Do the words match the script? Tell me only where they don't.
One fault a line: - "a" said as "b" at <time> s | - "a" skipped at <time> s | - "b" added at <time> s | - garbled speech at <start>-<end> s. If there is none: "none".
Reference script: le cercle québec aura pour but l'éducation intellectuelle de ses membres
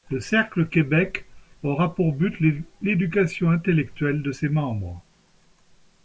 none